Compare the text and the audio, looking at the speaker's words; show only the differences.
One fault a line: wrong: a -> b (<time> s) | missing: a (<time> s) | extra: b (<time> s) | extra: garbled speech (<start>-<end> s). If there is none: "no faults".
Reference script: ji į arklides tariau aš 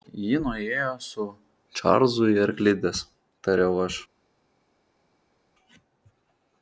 extra: nuėjo su čarlzu (0.4 s)